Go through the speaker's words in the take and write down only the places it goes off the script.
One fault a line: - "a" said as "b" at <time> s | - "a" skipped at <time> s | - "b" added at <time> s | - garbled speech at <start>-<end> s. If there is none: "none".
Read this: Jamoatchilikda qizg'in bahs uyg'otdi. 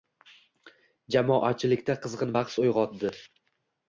none